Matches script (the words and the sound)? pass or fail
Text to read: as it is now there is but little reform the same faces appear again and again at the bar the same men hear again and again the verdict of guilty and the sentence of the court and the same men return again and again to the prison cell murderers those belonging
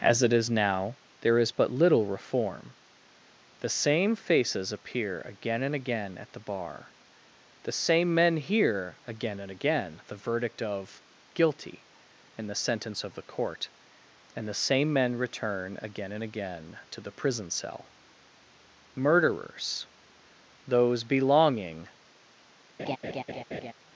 fail